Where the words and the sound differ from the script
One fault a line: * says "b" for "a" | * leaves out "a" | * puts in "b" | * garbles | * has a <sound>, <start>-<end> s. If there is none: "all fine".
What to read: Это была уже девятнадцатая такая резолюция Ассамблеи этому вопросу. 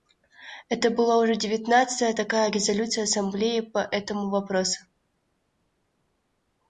* puts in "по"